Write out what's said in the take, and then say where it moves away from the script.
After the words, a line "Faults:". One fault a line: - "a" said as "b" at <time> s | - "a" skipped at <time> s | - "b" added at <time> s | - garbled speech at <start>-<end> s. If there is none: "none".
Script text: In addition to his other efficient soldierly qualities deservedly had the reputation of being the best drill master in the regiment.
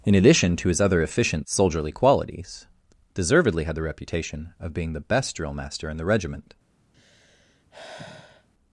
In addition to his other efficient soldierly qualities deservedly had the reputation of being the best drill master in the regiment.
Faults:
none